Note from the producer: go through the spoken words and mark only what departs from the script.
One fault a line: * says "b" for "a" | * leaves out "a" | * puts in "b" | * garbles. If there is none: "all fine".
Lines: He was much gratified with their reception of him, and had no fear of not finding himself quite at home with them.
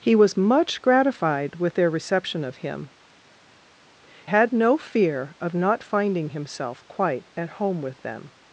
* leaves out "and"